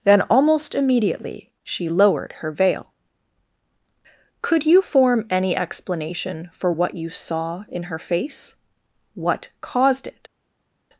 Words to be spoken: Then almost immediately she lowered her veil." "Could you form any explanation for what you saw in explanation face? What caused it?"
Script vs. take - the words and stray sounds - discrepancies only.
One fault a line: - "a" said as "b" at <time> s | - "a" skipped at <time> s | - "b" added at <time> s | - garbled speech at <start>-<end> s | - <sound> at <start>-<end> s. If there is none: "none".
- "explanation" said as "her" at 7.8 s